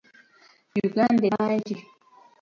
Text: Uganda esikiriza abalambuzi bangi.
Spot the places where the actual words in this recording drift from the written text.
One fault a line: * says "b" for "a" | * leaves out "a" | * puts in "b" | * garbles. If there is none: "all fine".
* leaves out "esikiriza abalambuzi"